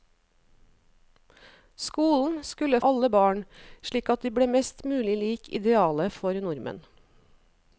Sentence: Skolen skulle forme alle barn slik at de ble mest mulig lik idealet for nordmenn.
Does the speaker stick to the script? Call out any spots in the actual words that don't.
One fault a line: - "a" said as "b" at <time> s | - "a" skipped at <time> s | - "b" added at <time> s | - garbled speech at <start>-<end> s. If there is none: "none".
- "forme" skipped at 2.8 s